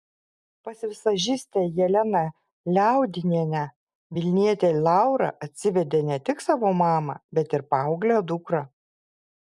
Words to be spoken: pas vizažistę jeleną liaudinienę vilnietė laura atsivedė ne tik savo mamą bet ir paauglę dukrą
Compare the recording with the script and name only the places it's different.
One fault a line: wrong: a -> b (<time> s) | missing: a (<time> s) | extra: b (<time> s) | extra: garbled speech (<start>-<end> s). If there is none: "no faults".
no faults